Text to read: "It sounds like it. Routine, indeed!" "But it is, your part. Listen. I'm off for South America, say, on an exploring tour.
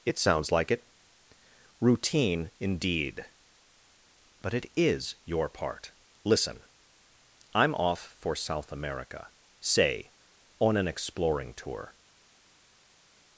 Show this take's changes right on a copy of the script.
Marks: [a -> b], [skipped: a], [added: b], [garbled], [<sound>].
"It sounds like it. Routine, indeed!" "But it is, your part. Listen. I'm off for South America, say, on an exploring tour.